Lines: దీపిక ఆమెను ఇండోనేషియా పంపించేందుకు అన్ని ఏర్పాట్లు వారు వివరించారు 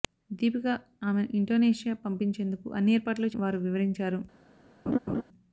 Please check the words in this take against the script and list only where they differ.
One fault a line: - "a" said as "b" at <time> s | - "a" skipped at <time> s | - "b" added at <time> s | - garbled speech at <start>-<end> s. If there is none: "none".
none